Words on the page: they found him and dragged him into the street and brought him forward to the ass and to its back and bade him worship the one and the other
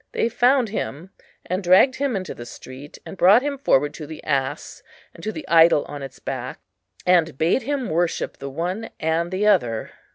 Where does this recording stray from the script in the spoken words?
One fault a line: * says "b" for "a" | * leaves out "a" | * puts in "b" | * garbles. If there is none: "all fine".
* puts in "the idol on"